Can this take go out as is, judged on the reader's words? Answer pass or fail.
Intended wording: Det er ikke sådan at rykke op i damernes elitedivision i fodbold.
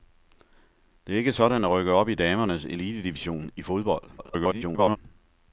fail